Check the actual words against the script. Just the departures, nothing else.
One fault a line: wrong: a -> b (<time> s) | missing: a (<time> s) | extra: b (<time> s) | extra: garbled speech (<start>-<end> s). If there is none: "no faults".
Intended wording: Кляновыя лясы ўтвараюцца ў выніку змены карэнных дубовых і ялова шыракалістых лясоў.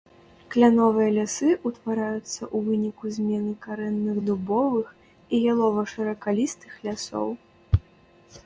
no faults